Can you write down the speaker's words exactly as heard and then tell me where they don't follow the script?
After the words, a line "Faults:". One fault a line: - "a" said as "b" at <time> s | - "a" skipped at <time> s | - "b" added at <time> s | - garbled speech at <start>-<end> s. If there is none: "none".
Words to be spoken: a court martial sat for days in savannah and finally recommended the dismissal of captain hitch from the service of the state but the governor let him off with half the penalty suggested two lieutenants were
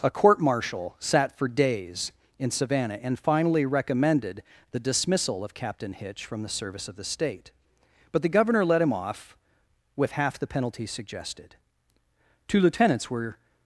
a court martial sat for days in savannah and finally recommended the dismissal of captain hitch from the service of the state but the governor let him off with half the penalty suggested two lieutenants were
Faults:
none